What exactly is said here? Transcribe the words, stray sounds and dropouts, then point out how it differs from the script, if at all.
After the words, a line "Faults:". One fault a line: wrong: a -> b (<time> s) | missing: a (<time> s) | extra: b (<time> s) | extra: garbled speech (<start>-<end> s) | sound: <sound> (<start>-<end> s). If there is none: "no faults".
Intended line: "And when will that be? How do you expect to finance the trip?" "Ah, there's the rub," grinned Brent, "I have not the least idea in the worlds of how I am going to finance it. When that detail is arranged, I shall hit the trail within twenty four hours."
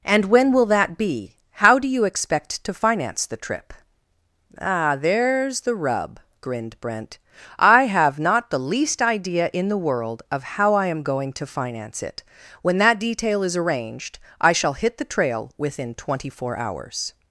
"And when will that be? How do you expect to finance the trip?" "Ah, there's the rub," grinned Brent, "I have not the least idea in the world of how I am going to finance it. When that detail is arranged, I shall hit the trail within twenty four hours."
Faults:
wrong: worlds -> world (9.8 s)